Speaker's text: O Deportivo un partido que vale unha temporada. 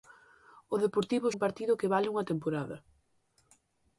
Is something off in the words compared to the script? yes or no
no